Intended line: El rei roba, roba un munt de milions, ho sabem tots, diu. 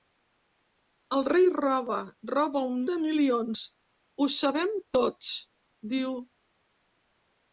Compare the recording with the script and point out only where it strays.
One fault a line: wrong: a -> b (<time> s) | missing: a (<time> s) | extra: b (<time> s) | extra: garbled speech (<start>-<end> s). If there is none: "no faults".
missing: munt (2.8 s)